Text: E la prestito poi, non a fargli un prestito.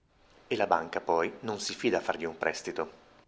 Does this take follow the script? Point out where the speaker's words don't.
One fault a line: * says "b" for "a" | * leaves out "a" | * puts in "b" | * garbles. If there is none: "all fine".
* says "banca" for "prestito"
* puts in "si fida"